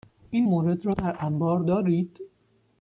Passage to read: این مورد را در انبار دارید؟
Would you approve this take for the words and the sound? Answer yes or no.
yes